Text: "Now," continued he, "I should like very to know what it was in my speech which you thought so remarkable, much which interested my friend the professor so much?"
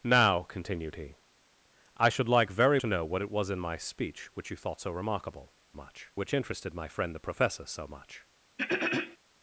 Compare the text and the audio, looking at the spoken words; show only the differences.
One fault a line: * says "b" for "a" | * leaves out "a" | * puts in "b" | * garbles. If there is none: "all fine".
all fine